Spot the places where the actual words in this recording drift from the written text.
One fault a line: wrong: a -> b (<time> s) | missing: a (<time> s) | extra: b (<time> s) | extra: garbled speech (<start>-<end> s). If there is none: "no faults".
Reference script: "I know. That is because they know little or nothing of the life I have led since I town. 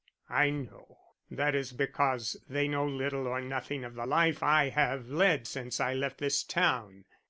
extra: left this (5.9 s)